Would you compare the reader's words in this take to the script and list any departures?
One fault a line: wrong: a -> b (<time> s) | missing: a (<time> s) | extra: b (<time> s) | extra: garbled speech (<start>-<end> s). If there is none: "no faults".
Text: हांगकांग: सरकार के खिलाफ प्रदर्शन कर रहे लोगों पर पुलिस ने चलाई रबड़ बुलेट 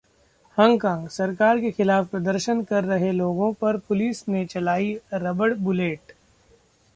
no faults